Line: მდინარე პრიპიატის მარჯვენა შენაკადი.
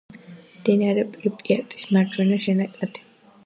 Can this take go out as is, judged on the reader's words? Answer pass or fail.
pass